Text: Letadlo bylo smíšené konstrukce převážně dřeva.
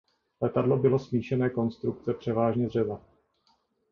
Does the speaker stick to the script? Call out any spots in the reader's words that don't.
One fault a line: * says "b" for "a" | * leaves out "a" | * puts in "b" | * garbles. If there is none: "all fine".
all fine